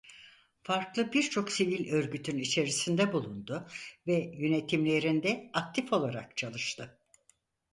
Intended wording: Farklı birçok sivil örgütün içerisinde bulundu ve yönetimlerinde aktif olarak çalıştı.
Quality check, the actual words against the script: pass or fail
pass